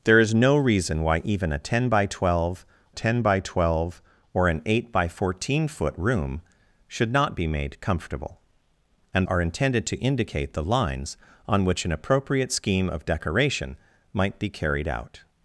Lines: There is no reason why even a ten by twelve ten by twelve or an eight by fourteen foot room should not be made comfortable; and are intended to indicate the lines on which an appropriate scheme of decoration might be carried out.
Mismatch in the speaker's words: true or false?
false